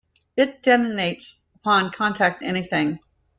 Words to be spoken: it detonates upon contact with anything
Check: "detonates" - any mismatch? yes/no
no